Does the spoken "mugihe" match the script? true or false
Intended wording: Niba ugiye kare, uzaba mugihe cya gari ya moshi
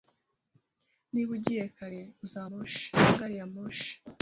false